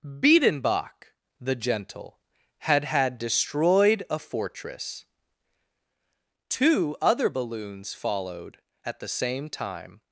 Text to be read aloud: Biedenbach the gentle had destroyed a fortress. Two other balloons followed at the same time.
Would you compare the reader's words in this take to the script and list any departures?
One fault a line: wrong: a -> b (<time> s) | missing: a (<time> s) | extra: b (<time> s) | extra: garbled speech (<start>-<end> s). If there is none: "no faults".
extra: had (2.9 s)